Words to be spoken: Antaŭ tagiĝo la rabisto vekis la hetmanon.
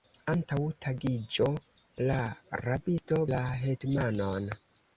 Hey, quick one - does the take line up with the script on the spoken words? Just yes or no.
no